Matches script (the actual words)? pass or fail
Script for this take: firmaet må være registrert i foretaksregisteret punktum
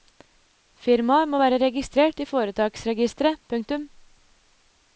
pass